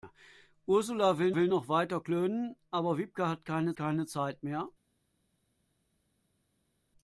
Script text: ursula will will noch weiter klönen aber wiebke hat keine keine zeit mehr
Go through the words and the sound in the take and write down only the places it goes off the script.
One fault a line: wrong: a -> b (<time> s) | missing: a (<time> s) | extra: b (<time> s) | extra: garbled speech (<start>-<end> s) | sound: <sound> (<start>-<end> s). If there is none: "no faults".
no faults